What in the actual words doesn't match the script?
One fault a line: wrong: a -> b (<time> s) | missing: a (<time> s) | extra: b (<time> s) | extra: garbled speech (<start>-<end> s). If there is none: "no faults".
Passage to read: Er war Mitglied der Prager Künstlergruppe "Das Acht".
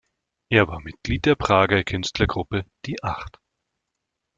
wrong: Das -> Die (2.9 s)